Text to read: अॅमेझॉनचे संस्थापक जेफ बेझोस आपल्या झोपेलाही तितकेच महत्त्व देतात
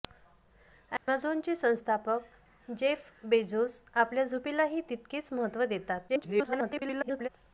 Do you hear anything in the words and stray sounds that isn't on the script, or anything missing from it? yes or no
yes